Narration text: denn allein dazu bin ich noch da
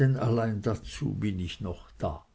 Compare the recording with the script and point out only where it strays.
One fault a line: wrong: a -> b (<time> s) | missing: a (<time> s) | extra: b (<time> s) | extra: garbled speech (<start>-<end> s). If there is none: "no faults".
no faults